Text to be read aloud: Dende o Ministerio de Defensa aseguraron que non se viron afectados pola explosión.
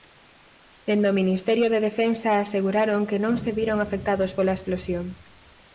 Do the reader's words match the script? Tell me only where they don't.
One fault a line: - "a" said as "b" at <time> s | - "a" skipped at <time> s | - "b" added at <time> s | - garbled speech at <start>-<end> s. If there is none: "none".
none